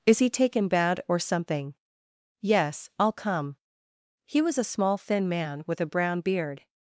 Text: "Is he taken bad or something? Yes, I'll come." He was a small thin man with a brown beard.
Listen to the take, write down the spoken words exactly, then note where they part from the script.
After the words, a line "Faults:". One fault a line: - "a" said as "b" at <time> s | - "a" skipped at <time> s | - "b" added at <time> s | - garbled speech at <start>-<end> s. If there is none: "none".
"Is he taken bad or something? Yes, I'll come." He was a small thin man with a brown beard.
Faults:
none